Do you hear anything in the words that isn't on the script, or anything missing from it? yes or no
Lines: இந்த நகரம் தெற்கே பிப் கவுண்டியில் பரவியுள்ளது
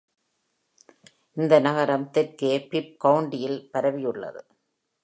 no